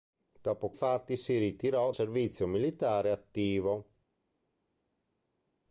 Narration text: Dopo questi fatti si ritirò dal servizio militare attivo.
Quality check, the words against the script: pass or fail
fail